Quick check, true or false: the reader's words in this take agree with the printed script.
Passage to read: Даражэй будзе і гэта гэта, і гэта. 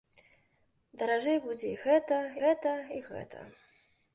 true